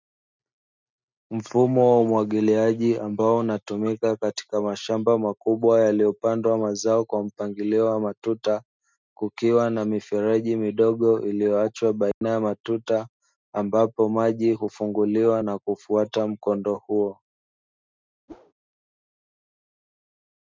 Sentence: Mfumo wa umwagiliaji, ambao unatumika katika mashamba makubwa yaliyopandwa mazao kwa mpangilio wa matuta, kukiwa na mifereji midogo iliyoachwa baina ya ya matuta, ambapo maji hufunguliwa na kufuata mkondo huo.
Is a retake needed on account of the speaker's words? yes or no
yes